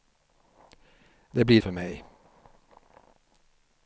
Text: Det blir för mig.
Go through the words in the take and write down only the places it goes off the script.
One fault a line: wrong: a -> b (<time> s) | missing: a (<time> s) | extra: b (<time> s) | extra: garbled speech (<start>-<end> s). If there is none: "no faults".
no faults